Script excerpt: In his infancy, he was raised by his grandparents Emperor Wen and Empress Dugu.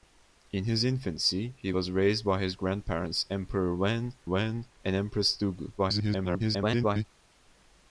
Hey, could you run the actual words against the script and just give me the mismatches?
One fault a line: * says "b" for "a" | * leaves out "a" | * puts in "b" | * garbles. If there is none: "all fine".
* puts in "Wen"
* garbles